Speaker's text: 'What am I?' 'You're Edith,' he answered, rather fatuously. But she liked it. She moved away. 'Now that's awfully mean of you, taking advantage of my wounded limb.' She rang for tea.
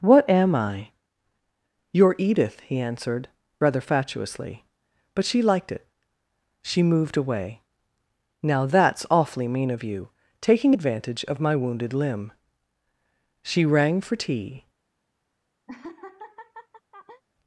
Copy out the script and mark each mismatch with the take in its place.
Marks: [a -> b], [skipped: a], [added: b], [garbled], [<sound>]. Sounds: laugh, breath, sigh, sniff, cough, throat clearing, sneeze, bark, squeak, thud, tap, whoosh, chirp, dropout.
'What am I?' 'You're Edith,' he answered, rather fatuously. But she liked it. She moved away. 'Now that's awfully mean of you, taking advantage of my wounded limb.' She rang for tea. [laugh]